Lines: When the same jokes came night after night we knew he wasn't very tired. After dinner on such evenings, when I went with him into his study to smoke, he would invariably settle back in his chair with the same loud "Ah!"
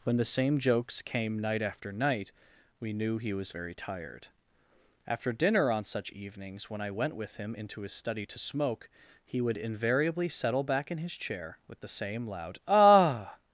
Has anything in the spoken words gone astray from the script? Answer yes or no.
yes